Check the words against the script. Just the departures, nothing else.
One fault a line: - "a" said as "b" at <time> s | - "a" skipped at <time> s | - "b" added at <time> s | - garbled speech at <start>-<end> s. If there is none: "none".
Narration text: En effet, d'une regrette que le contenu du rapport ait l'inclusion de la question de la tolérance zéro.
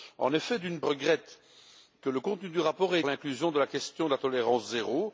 none